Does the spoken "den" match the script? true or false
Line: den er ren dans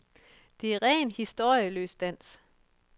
false